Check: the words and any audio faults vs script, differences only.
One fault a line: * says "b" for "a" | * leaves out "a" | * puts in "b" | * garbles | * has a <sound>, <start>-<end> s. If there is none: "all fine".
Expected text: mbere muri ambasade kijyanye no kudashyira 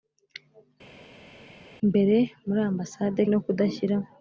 * leaves out "kijyanye"